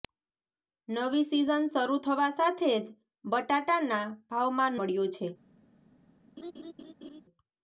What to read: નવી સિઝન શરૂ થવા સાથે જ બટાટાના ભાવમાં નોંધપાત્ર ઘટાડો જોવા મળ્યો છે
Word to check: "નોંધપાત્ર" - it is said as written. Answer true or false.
false